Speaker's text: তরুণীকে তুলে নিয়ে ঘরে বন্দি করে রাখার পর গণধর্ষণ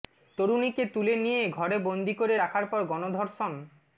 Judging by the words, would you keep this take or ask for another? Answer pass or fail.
pass